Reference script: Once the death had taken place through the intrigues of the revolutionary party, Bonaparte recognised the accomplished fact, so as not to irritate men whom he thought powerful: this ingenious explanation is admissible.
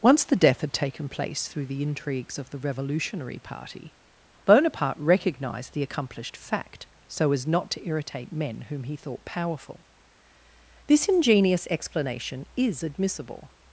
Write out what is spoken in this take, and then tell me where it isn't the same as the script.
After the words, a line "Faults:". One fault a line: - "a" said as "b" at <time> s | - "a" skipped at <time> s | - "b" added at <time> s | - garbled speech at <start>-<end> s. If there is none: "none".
Once the death had taken place through the intrigues of the revolutionary party, Bonaparte recognised the accomplished fact, so as not to irritate men whom he thought powerful: this ingenious explanation is admissible.
Faults:
none